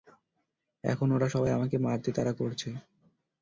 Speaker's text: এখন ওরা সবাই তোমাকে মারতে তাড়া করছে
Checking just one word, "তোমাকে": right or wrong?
wrong